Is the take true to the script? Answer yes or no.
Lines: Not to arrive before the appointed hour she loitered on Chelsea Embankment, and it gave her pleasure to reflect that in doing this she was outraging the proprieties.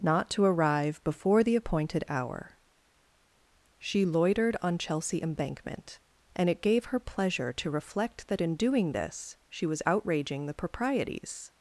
yes